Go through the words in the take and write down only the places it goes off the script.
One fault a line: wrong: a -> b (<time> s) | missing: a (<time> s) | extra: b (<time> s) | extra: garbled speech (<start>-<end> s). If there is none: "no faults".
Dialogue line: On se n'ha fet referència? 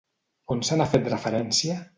no faults